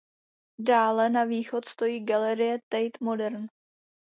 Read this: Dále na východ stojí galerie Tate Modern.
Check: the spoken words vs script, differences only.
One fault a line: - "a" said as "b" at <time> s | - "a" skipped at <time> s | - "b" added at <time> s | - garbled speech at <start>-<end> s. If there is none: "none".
none